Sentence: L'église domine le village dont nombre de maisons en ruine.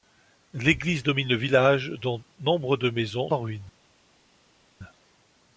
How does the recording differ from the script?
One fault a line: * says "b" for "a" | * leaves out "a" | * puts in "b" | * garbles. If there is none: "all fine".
all fine